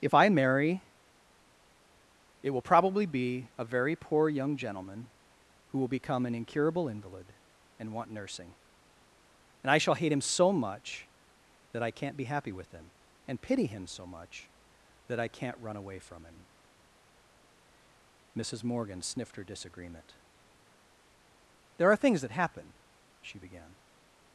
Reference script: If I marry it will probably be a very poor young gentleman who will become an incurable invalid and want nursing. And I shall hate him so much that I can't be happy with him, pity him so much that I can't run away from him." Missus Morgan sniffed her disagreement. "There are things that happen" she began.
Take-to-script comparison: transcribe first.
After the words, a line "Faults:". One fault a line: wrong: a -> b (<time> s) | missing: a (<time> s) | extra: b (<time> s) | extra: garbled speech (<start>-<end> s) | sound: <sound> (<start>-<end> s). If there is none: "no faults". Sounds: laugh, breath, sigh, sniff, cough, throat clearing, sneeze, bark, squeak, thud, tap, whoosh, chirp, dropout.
If I marry it will probably be a very poor young gentleman who will become an incurable invalid and want nursing. And I shall hate him so much that I can't be happy with him, and pity him so much that I can't run away from him." Missus Morgan sniffed her disagreement. "There are things that happen" she began.
Faults:
extra: and (13.3 s)